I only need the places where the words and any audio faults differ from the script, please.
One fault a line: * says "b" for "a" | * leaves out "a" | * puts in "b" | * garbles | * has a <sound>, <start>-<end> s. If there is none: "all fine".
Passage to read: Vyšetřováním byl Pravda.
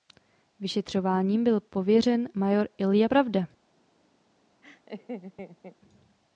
* puts in "pověřen major Ilja"
* has a laugh, 4.6-5.8 s